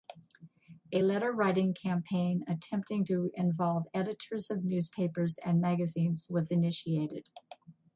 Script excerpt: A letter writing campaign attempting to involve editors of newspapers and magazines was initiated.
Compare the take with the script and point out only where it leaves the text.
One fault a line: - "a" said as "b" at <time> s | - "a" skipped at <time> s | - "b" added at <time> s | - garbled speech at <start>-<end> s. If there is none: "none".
none